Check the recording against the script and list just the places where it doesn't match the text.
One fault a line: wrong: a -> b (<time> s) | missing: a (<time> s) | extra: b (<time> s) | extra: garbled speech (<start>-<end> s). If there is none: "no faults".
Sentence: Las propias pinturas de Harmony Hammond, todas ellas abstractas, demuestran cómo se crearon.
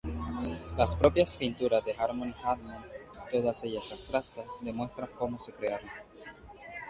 no faults